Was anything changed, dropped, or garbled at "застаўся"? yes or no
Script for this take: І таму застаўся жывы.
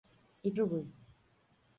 yes